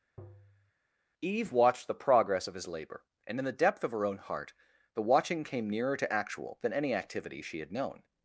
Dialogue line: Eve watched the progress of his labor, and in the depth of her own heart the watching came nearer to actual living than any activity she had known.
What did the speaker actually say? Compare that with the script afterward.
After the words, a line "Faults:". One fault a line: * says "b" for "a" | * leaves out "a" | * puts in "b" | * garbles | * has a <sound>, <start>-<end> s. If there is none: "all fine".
Eve watched the progress of his labor, and in the depth of her own heart the watching came nearer to actual than any activity she had known.
Faults:
* has a tap, 0.2-0.7 s
* leaves out "living"